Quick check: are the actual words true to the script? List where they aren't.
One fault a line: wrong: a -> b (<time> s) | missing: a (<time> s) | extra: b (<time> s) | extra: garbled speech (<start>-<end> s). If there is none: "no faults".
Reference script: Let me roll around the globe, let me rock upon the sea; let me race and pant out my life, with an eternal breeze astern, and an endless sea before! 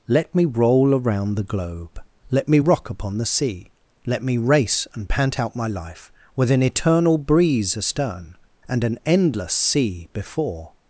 no faults